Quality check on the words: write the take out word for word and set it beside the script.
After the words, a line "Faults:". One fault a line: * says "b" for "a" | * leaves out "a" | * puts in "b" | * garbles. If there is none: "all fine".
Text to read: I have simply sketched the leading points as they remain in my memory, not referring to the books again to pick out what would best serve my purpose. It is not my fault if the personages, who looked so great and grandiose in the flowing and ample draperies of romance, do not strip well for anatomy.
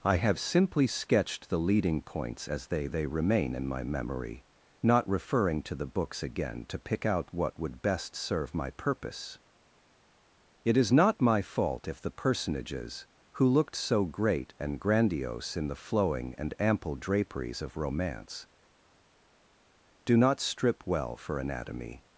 I have simply sketched the leading points as they they remain in my memory, not referring to the books again to pick out what would best serve my purpose. It is not my fault if the personages, who looked so great and grandiose in the flowing and ample draperies of romance, do not strip well for anatomy.
Faults:
* puts in "they"